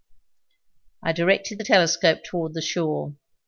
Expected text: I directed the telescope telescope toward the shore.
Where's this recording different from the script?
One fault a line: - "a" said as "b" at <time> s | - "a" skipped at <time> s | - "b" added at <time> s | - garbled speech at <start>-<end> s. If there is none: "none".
- "telescope" skipped at 2.2 s